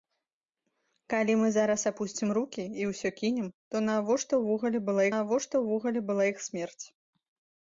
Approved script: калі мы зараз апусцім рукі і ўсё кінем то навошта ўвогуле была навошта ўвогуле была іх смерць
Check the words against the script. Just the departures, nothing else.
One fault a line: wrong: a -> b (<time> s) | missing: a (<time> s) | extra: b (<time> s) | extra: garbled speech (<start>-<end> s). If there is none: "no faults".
no faults